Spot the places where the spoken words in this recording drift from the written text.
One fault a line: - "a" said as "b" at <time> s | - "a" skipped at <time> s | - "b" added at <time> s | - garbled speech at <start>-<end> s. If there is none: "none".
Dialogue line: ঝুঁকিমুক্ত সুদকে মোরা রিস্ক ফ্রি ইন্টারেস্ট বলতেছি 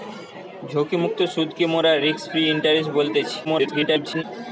- garbled speech at 3.4-4.2 s